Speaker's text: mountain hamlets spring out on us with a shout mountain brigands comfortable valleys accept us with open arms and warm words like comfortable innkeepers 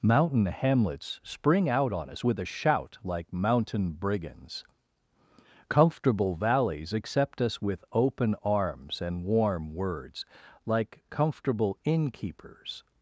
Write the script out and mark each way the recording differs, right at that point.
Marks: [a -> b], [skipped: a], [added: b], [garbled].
mountain hamlets spring out on us with a shout [added: like] mountain brigands comfortable valleys accept us with open arms and warm words like comfortable innkeepers